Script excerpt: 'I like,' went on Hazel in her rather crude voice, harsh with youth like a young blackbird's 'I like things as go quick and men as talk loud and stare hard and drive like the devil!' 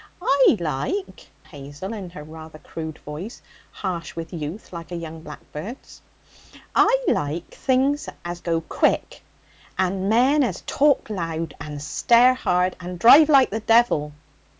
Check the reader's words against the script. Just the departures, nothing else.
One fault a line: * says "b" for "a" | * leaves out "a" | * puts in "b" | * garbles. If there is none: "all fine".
* leaves out "went on"